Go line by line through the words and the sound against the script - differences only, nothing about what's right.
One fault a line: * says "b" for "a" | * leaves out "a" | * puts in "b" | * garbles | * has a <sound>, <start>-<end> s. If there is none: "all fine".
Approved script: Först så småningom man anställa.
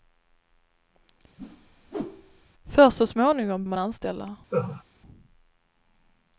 * has a whoosh, 1.4-2.5 s
* has a laugh, 4.5-4.8 s